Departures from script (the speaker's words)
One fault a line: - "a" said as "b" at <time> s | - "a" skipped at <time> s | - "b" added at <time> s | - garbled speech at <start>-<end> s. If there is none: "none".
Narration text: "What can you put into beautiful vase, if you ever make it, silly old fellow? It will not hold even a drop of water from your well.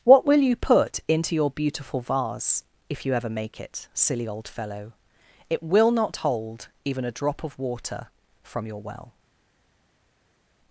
- "can" said as "will" at 0.2 s
- "your" added at 1.4 s